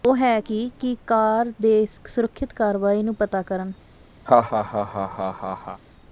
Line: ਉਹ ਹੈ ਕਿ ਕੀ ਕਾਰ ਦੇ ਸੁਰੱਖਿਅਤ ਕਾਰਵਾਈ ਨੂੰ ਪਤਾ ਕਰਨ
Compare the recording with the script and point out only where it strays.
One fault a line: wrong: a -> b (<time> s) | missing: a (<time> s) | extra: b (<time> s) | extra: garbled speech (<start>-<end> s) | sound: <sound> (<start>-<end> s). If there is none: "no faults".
sound: laugh (4.3-5.8 s)